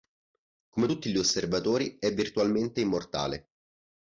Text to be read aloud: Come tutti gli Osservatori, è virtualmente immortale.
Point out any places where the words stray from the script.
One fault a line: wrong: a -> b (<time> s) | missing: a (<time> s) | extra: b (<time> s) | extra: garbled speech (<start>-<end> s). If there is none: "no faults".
no faults